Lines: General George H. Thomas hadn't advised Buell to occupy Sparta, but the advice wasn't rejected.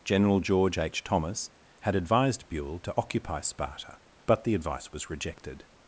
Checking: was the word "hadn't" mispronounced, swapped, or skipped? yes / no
yes